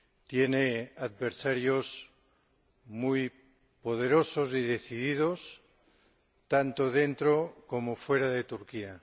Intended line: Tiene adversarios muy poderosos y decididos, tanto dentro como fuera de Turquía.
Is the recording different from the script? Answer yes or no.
no